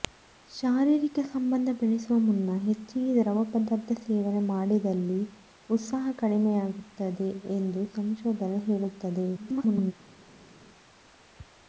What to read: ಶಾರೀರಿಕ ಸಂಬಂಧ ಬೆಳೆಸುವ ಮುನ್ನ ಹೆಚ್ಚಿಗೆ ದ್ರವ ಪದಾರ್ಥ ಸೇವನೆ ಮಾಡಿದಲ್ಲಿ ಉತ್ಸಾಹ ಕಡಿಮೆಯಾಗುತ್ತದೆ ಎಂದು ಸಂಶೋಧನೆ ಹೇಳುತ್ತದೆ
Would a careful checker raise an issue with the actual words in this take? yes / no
yes